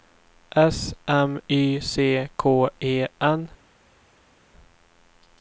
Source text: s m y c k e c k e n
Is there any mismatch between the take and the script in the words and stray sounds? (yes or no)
yes